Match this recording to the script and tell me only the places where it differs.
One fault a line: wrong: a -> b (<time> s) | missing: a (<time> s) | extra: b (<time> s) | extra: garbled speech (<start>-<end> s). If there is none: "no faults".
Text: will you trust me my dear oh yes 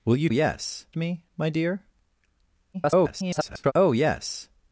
wrong: trust -> yes (0.3 s)
extra: garbled speech (2.7-3.7 s)